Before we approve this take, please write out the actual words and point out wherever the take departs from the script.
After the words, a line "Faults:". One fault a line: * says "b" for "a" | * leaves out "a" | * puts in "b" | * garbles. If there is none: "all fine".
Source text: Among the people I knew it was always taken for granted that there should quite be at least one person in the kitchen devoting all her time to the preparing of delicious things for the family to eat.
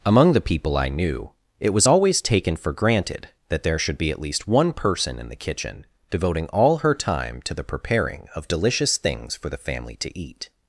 Among the people I knew it was always taken for granted that there should be at least one person in the kitchen devoting all her time to the preparing of delicious things for the family to eat.
Faults:
* leaves out "quite"